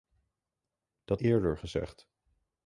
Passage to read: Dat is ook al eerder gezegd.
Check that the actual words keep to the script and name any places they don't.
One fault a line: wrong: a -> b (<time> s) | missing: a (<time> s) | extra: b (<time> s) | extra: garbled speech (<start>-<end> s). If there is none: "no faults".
missing: is ook al (1.2 s)